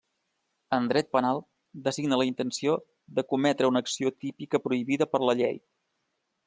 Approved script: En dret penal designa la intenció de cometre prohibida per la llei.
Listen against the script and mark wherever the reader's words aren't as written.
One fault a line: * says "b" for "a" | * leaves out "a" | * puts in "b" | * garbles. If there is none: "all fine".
* puts in "una acció típica"